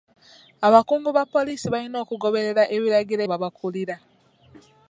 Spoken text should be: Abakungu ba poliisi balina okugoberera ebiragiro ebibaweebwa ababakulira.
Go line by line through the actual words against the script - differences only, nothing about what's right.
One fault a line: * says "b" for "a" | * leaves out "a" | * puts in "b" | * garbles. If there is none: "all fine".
* leaves out "ebibaweebwa"